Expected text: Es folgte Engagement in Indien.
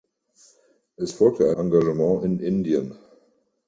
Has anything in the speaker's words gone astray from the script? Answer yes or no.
no